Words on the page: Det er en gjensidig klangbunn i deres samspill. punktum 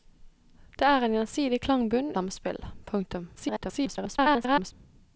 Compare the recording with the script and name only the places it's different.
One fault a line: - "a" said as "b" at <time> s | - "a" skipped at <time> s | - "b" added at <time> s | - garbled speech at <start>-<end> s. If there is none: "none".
- "i deres" skipped at 2.1 s
- garbled speech at 3.4-4.7 s